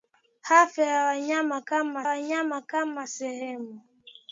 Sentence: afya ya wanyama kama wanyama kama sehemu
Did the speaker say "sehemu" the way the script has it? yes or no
yes